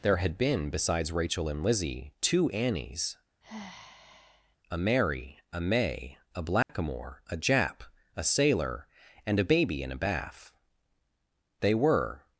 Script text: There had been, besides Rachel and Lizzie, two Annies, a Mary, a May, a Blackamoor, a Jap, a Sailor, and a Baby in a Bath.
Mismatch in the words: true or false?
true